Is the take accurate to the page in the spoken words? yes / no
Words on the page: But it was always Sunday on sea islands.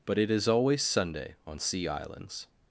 no